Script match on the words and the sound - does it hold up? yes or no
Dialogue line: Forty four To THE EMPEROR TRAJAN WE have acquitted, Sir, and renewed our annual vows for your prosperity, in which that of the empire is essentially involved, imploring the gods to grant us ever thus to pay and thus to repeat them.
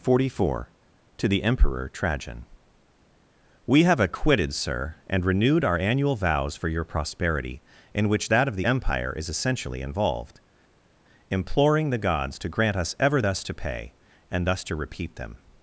yes